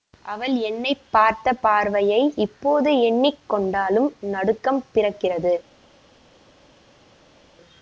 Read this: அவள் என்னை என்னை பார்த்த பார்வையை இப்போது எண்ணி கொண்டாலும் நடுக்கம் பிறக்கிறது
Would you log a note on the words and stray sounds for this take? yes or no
yes